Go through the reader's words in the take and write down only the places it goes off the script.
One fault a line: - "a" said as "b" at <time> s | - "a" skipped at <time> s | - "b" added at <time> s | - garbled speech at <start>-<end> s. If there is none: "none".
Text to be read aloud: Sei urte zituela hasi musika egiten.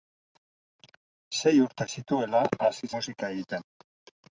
none